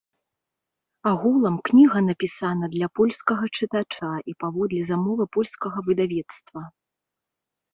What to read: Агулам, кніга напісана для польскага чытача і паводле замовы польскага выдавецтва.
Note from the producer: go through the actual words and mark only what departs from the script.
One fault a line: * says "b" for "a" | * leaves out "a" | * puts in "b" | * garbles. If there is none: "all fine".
all fine